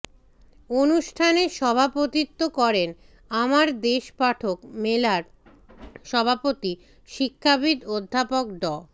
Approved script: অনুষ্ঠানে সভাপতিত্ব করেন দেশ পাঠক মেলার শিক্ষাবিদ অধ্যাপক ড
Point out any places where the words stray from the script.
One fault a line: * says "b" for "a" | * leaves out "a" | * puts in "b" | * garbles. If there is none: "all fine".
* puts in "আমার"
* puts in "সভাপতি"